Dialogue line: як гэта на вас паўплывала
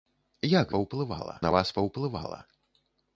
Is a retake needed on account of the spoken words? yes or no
yes